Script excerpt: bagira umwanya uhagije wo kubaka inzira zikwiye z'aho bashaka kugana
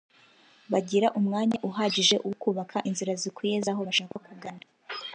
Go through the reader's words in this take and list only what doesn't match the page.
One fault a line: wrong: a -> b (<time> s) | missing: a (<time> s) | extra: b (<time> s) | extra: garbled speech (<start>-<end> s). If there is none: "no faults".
no faults